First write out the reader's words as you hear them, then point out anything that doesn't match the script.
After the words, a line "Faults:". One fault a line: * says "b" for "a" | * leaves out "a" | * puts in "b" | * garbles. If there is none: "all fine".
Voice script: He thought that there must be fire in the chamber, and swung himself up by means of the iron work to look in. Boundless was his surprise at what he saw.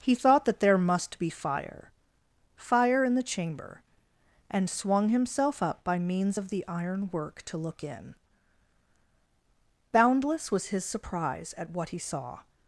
He thought that there must be fire fire in the chamber, and swung himself up by means of the iron work to look in. Boundless was his surprise at what he saw.
Faults:
* puts in "fire"